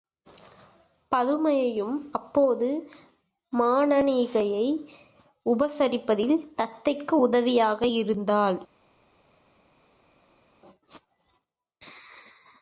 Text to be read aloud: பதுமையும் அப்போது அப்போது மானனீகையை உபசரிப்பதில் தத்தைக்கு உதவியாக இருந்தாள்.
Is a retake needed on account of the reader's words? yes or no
yes